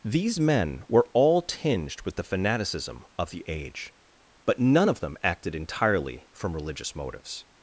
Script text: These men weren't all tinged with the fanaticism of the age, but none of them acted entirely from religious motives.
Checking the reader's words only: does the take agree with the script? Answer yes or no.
no